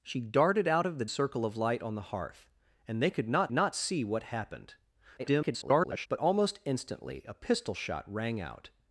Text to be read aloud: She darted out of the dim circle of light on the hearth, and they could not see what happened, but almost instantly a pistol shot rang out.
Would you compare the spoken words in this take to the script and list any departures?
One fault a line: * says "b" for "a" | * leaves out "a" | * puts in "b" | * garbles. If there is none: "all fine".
* leaves out "dim"
* puts in "not"
* garbles